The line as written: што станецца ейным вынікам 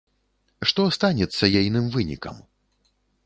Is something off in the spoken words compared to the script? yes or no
no